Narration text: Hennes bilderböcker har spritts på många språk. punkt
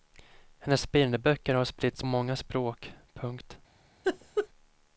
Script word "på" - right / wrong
wrong